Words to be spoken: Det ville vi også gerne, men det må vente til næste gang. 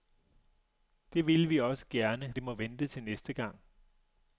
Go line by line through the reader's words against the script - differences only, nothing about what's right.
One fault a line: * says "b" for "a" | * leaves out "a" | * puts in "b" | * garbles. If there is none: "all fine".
* leaves out "men"